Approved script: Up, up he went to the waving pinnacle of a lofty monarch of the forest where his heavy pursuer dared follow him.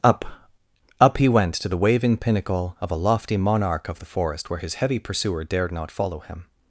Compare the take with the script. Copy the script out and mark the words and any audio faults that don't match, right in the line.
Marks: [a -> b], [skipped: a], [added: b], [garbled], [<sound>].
Up, up he went to the waving pinnacle of a lofty monarch of the forest where his heavy pursuer dared [added: not] follow him.